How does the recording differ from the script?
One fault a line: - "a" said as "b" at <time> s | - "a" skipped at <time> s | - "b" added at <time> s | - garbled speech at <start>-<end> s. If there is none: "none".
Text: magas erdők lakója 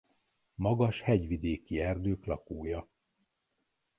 - "hegyvidéki" added at 1.0 s